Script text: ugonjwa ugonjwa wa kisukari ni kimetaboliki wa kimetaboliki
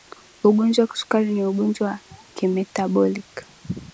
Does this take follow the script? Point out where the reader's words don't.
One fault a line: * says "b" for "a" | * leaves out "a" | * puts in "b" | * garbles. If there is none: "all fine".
* leaves out "ugonjwa"
* says "ugonjwa" for "kimetaboliki"